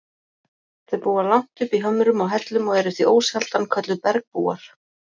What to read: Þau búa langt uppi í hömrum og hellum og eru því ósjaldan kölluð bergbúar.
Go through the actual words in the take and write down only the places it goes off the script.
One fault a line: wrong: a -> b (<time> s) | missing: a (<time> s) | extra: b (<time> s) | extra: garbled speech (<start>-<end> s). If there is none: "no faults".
no faults